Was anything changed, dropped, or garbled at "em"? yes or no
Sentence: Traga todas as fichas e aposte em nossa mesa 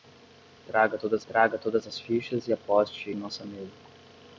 yes